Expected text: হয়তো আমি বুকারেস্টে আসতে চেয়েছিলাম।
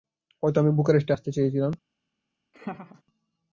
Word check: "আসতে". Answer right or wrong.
right